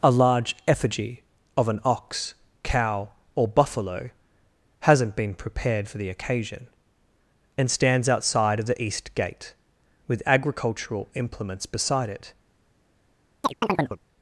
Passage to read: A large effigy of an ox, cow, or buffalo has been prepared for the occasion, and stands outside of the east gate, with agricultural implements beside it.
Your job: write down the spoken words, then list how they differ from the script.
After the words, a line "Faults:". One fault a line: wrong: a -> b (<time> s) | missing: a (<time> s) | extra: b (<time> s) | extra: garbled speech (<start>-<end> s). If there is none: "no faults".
A large effigy of an ox, cow, or buffalo hasn't been prepared for the occasion, and stands outside of the east gate, with agricultural implements beside it.
Faults:
wrong: has -> hasn't (4.8 s)